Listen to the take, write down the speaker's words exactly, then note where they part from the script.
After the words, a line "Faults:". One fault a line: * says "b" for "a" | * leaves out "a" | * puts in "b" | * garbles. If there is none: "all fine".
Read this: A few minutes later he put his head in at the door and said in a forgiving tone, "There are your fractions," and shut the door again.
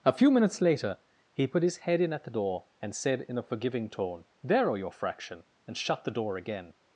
A few minutes later he put his head in at the door and said in a forgiving tone, "There are your fraction," and shut the door again.
Faults:
* says "fraction" for "fractions"